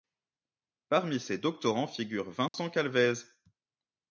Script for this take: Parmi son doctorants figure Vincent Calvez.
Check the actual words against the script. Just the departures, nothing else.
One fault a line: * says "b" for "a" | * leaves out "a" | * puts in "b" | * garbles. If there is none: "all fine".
* says "ses" for "son"